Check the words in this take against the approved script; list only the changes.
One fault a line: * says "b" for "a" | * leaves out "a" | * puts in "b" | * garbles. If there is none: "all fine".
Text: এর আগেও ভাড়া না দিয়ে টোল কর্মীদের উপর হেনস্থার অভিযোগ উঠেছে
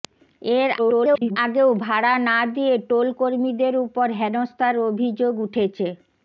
* garbles